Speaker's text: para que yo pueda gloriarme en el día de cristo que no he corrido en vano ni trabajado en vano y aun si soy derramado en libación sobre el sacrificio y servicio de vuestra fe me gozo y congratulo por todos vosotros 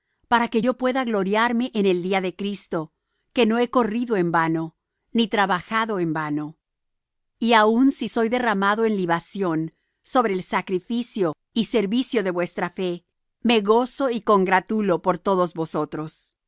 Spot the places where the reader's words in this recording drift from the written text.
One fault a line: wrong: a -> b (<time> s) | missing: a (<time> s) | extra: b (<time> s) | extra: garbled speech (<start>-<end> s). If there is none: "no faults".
no faults